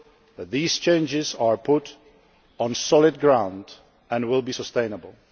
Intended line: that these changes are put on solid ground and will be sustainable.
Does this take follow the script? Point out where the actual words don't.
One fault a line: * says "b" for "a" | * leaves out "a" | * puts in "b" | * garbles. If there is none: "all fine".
all fine